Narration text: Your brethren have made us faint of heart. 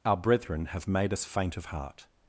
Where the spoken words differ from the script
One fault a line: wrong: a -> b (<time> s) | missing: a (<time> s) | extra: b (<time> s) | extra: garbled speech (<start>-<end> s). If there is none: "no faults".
wrong: Your -> Our (0.0 s)